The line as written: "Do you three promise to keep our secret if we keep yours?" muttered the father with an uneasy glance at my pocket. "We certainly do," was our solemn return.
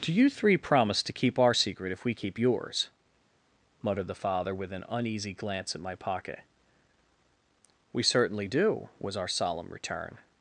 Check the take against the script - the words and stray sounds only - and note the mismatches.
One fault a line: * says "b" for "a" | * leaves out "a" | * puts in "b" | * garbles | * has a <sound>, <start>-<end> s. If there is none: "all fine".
all fine